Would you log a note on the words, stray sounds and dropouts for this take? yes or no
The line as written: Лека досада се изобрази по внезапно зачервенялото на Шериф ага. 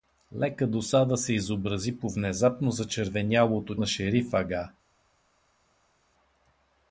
no